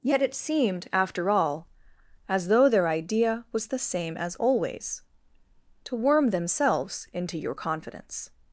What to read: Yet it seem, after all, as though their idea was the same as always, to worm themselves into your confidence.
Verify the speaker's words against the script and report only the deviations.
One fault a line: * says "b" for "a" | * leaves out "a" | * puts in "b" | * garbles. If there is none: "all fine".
* says "seemed" for "seem"